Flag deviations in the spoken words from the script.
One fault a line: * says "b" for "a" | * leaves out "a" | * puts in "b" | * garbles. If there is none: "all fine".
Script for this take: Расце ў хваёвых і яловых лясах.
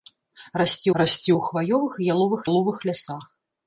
* puts in "расце"
* puts in "яловых"